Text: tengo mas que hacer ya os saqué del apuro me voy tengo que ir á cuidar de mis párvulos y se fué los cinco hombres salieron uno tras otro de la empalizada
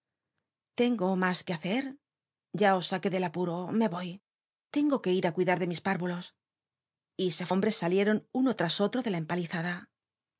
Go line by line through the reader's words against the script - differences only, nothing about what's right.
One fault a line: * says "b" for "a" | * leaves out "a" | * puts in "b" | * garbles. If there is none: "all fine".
* leaves out "fué los cinco"